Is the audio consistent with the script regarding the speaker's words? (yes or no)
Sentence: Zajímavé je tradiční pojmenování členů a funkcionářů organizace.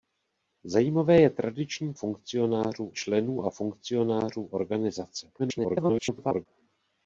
no